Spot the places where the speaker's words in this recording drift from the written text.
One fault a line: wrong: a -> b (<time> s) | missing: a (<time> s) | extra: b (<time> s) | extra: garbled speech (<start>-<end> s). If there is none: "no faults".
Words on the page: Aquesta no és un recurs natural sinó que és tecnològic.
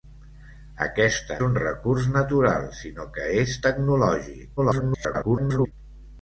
missing: no és (1.4 s)
extra: garbled speech (4.6-5.7 s)